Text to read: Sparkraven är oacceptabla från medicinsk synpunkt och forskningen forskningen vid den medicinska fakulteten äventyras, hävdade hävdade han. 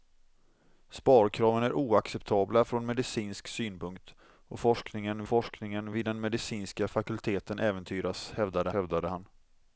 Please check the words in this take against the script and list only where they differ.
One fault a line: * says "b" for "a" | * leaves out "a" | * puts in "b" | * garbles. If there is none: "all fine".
all fine